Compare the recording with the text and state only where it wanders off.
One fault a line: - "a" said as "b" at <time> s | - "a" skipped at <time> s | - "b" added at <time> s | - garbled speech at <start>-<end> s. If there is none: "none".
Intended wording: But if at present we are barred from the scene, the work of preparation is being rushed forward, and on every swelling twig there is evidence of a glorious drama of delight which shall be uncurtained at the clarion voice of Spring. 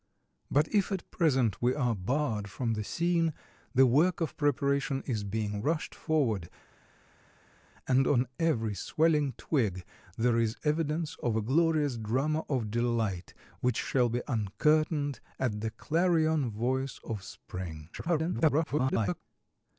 - garbled speech at 17.9-19.2 s